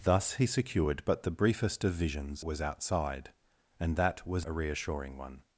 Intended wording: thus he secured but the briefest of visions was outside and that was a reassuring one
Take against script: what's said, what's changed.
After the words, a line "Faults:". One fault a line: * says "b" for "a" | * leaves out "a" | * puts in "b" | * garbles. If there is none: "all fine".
thus he secured but the briefest of visions was outside and that was a reassuring one
Faults:
all fine